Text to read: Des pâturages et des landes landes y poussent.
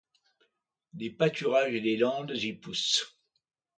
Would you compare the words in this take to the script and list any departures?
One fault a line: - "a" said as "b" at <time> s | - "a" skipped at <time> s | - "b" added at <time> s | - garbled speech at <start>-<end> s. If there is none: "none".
- "landes" skipped at 2.3 s